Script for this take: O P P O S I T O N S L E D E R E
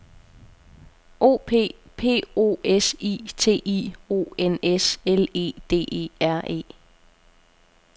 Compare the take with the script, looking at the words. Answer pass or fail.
fail